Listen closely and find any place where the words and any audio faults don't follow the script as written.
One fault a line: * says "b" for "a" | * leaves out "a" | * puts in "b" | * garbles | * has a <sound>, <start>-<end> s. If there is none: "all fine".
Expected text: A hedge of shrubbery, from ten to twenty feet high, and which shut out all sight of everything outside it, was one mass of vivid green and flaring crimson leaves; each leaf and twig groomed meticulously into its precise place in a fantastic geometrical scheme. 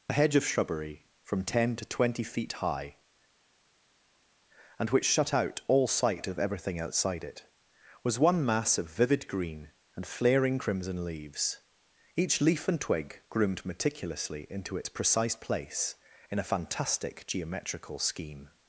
all fine